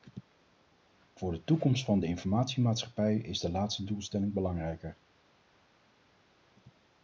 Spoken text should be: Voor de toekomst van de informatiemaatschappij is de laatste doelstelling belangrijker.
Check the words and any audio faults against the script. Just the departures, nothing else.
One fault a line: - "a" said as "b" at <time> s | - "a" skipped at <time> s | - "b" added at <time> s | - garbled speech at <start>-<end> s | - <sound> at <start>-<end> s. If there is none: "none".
none